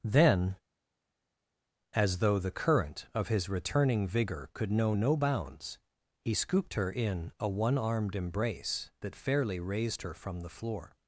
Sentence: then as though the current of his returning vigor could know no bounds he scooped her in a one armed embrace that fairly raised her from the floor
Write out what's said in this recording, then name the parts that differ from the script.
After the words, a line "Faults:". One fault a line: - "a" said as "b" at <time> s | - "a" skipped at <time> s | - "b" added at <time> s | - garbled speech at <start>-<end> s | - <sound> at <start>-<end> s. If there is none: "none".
then as though the current of his returning vigor could know no bounds he scooped her in a one armed embrace that fairly raised her from the floor
Faults:
none